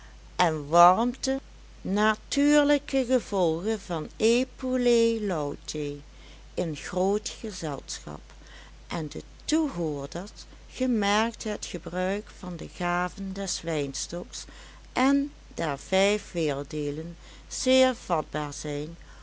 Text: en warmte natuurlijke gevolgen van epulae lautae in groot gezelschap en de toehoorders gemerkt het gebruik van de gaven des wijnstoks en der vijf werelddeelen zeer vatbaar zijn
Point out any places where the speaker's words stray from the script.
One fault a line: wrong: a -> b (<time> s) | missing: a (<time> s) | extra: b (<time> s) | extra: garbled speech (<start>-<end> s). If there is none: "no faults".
no faults